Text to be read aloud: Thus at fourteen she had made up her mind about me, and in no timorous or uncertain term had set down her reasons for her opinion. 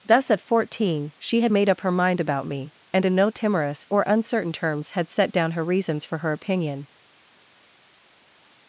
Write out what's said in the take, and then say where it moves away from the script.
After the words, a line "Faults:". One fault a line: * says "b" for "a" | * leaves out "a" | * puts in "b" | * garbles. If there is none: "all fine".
Thus at fourteen she had made up her mind about me, and in no timorous or uncertain terms had set down her reasons for her opinion.
Faults:
* says "terms" for "term"